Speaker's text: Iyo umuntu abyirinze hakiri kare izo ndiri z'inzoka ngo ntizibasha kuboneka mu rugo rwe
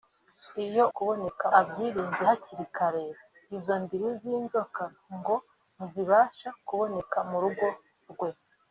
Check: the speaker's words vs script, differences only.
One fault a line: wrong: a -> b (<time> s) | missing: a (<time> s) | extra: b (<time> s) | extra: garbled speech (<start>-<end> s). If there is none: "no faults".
wrong: umuntu -> kuboneka (0.9 s)